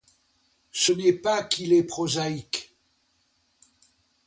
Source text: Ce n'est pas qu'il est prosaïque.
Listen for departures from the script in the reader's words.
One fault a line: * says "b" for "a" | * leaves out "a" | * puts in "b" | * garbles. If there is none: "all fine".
all fine